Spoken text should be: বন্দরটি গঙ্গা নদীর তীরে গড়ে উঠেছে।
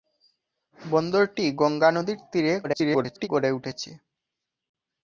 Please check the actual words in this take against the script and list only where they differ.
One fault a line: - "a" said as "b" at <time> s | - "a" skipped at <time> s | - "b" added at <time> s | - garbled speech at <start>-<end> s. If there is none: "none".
- garbled speech at 2.6-3.3 s